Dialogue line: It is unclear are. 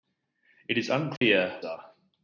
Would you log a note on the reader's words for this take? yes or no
no